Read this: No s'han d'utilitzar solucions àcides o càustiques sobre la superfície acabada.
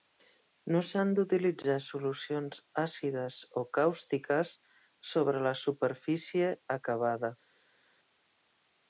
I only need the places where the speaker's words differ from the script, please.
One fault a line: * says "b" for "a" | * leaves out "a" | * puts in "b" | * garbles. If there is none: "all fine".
all fine